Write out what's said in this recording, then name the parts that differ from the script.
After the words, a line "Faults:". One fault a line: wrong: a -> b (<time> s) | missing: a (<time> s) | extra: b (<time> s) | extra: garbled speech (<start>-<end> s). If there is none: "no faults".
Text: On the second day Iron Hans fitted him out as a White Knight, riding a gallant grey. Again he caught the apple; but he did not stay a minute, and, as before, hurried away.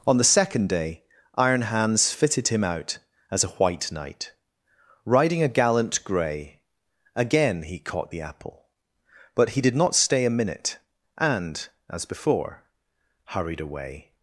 On the second day Iron Hans fitted him out as a White Knight, riding a gallant grey. Again he caught the apple; but he did not stay a minute, and, as before, hurried away.
Faults:
no faults